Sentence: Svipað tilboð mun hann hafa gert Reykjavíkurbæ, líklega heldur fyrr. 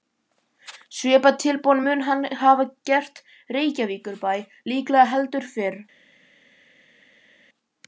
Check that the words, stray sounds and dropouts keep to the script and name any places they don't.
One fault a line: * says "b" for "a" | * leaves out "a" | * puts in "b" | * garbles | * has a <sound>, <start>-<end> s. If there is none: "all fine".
all fine